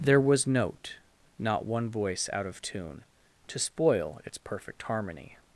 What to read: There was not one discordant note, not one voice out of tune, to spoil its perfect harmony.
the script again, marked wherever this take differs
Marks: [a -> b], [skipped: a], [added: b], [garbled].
There was [skipped: not one discordant] note, not one voice out of tune, to spoil its perfect harmony.